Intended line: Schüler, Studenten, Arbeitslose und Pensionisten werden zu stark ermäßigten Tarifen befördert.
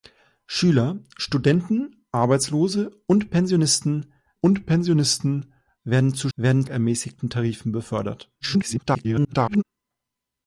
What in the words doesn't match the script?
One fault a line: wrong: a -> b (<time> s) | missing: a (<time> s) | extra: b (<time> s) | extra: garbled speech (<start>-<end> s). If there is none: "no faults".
extra: und Pensionisten (4.4 s)
wrong: stark -> werden (6.3 s)
extra: garbled speech (8.4-9.6 s)